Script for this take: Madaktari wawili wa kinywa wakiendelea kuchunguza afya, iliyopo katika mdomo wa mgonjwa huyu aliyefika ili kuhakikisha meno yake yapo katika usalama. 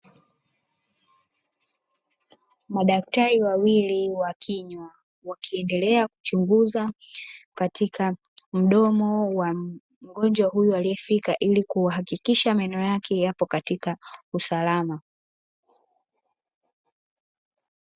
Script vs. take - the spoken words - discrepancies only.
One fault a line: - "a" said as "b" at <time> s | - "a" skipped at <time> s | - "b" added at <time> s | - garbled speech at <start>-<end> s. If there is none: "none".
- "afya iliyopo" skipped at 6.9 s